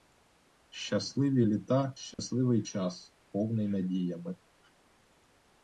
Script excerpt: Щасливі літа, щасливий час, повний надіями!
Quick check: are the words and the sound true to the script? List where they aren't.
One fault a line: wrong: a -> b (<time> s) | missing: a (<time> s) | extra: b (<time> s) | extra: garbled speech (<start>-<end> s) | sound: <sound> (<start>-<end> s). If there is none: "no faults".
sound: dropout (2.1-2.2 s)